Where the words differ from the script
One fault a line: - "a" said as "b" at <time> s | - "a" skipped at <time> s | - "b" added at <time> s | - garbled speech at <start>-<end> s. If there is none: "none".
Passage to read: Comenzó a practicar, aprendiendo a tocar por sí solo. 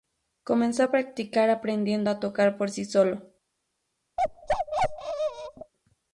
none